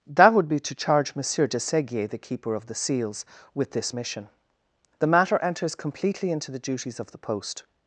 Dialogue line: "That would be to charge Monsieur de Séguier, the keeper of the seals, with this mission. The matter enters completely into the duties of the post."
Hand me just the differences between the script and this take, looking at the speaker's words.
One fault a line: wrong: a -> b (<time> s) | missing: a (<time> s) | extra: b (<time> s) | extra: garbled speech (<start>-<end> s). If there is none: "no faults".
no faults